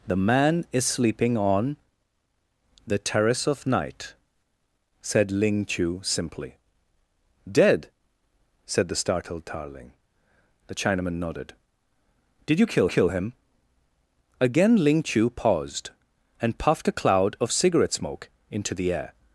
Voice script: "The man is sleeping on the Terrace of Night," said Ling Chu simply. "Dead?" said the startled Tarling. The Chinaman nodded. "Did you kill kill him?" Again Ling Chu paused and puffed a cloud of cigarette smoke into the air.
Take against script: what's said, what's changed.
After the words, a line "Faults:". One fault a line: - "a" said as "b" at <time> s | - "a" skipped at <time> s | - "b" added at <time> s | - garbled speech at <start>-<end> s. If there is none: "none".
"The man is sleeping on the Terrace of Night," said Ling Chu simply. "Dead?" said the startled Tarling. The Chinaman nodded. "Did you kill kill him?" Again Ling Chu paused and puffed a cloud of cigarette smoke into the air.
Faults:
none